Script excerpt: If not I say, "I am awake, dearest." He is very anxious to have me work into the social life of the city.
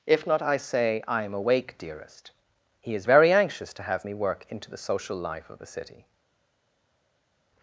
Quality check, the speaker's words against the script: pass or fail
pass